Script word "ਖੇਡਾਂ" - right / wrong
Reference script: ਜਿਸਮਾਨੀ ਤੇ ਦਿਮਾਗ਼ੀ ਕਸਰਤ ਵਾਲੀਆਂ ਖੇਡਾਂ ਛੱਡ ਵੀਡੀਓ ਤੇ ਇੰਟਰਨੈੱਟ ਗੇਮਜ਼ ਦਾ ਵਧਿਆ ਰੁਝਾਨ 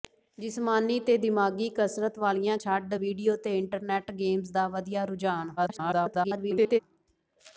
wrong